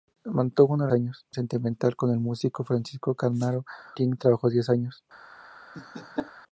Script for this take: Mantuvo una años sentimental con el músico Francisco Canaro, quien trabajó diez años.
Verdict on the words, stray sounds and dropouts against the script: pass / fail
fail